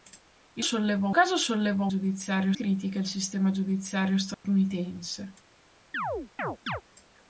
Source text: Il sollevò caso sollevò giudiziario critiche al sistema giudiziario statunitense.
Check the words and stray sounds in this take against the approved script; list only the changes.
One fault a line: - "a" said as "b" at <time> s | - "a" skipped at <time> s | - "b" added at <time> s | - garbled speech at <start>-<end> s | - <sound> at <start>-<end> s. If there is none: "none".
- dropout at 4.3-4.4 s
- chirp at 5.9-6.8 s